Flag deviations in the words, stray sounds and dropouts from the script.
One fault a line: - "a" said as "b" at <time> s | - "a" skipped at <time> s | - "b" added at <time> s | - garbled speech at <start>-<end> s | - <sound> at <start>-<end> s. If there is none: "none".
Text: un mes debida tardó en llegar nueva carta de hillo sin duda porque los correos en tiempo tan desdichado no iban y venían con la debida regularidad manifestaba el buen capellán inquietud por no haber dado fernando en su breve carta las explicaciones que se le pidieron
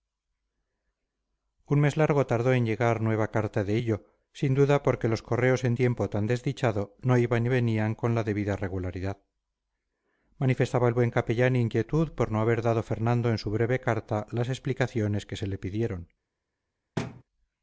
- "debida" said as "largo" at 1.9 s
- thud at 17.0-17.2 s